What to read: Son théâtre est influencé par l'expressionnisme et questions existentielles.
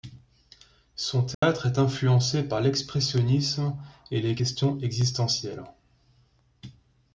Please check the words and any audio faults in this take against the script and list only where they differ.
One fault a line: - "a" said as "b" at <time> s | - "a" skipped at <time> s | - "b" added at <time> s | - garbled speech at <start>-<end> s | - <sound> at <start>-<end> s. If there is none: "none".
- dropout at 1.3-1.4 s
- "les" added at 4.2 s